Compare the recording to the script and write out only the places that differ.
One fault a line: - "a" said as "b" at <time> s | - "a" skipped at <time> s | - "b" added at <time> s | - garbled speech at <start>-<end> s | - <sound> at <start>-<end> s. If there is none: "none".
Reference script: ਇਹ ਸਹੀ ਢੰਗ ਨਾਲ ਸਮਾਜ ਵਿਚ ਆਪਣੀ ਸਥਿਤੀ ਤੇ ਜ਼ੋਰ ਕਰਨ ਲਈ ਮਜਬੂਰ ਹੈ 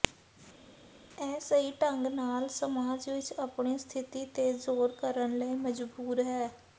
none